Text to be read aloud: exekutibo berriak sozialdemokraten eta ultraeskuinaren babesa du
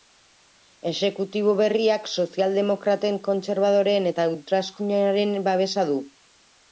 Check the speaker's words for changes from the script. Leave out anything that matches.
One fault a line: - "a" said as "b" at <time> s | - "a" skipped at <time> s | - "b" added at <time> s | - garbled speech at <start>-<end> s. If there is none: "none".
- "kontserbadoreen" added at 3.3 s